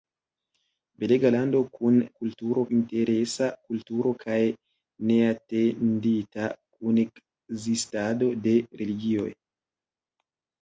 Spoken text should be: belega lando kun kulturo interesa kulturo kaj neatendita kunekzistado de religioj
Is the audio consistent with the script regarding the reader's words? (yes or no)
yes